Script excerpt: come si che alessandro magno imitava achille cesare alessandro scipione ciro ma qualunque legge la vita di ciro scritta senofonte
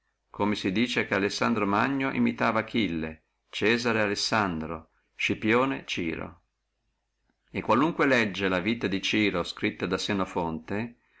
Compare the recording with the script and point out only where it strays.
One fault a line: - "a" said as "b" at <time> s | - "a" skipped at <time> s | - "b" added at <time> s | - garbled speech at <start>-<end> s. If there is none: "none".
- "dice" added at 0.7 s
- "ma" said as "e" at 7.5 s
- "da" added at 9.8 s